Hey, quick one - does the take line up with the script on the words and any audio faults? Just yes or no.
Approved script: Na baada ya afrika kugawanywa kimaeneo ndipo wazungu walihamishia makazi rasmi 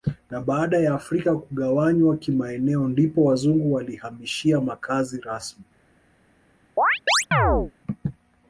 no